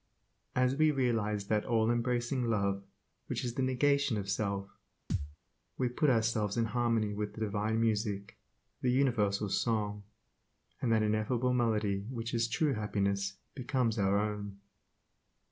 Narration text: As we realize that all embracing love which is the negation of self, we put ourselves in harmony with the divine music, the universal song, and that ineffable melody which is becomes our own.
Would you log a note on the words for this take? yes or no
yes